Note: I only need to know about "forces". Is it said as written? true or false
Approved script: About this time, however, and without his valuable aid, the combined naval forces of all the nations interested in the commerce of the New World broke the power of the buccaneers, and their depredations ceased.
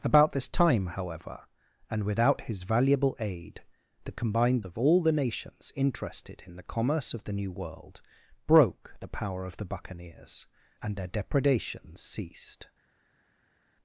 false